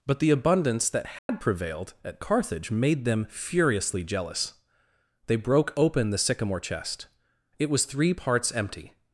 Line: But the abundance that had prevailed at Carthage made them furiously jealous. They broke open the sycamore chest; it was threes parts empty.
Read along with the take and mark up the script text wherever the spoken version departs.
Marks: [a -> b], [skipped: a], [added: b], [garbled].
But the abundance that had prevailed at Carthage made them furiously jealous. They broke open the sycamore chest; it was [threes -> three] parts empty.